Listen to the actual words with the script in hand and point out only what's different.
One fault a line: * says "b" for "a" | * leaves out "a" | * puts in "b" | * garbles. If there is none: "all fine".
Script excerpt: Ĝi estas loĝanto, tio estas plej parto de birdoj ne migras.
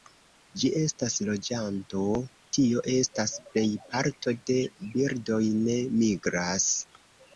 all fine